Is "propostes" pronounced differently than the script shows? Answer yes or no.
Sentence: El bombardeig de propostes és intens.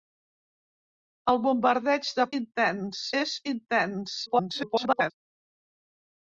yes